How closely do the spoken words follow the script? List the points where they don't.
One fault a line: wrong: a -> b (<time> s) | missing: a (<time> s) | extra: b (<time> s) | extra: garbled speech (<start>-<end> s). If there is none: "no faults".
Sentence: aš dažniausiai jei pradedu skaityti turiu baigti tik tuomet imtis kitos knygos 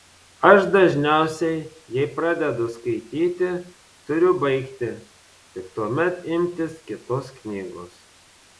no faults